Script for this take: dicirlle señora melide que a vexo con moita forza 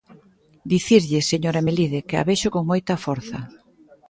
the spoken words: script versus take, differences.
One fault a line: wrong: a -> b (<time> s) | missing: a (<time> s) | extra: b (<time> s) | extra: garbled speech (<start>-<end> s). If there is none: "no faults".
no faults